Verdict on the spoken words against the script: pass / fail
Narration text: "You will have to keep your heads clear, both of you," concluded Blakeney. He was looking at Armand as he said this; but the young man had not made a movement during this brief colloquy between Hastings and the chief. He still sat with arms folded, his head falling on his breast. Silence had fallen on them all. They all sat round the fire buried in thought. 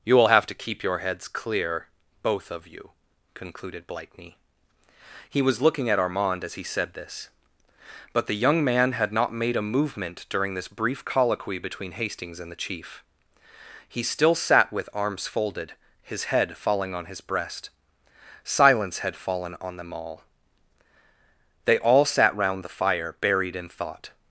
pass